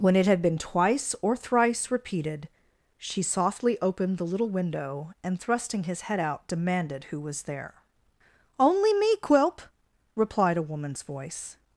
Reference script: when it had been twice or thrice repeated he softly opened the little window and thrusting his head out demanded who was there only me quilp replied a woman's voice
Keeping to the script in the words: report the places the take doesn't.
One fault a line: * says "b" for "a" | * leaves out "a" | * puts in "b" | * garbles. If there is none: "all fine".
* says "she" for "he"